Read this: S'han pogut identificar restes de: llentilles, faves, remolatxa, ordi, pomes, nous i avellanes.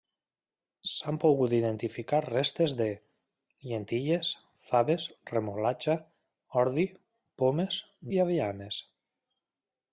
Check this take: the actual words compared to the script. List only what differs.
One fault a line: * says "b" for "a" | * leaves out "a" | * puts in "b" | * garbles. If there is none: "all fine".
* leaves out "nous"